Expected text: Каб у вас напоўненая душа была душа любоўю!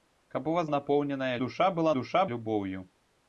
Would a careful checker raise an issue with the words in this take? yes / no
no